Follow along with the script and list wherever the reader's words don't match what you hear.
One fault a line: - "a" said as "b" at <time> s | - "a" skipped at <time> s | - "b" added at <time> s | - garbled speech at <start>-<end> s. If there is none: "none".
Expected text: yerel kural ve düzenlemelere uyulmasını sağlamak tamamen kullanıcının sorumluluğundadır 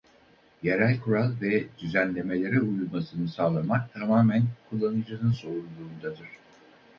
none